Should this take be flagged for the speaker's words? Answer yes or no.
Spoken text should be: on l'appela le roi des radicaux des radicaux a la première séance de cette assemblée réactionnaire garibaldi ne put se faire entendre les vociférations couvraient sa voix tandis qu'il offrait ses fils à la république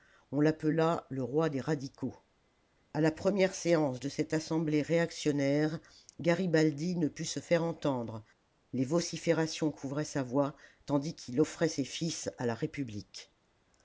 yes